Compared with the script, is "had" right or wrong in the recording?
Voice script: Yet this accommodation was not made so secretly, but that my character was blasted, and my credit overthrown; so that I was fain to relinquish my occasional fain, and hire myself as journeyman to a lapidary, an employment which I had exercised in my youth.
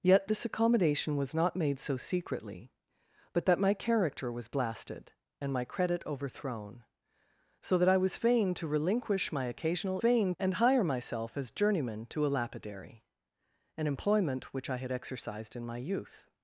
right